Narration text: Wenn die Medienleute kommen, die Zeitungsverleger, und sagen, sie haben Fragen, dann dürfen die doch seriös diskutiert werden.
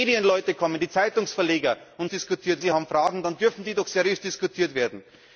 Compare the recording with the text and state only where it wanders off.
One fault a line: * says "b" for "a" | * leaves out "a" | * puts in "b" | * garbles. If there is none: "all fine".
* says "diskutiert" for "sagen"